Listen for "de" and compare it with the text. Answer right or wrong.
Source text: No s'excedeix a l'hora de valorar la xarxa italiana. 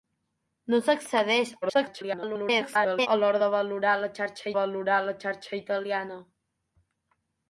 right